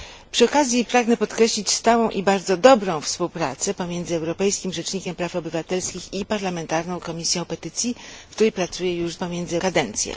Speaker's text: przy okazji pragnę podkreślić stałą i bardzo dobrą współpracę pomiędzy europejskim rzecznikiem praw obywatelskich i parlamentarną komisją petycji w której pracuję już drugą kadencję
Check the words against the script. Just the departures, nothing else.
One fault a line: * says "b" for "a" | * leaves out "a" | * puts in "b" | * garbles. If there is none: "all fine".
* says "pomiędzy" for "drugą"